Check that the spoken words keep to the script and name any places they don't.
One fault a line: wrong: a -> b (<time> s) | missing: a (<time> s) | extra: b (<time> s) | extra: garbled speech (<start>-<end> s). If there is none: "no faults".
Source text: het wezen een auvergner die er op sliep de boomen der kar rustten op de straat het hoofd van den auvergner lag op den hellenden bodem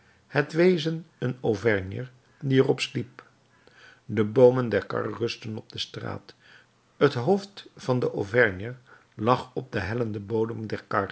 no faults